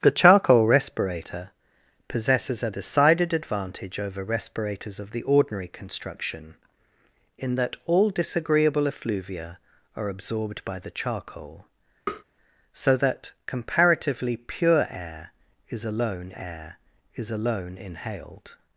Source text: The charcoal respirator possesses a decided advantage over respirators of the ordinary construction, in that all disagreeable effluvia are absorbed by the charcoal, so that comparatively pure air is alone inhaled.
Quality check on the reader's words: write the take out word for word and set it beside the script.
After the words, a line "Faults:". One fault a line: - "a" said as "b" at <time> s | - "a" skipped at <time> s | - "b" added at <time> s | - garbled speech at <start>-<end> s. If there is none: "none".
The charcoal respirator possesses a decided advantage over respirators of the ordinary construction, in that all disagreeable effluvia are absorbed by the charcoal, so that comparatively pure air is alone air is alone inhaled.
Faults:
- "air is alone" added at 16.4 s